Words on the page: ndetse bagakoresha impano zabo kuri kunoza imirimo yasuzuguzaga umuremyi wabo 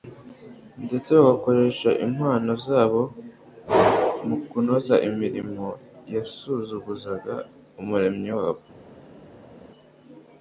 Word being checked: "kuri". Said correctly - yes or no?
no